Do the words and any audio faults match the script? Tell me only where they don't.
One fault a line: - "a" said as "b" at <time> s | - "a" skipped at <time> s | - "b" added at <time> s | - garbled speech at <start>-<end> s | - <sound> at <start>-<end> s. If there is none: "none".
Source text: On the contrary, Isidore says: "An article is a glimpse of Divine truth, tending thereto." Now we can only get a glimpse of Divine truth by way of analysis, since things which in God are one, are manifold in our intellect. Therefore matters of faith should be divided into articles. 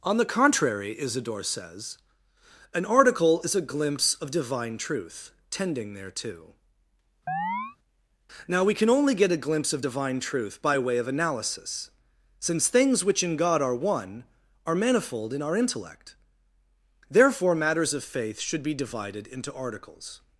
- chirp at 7.3-7.8 s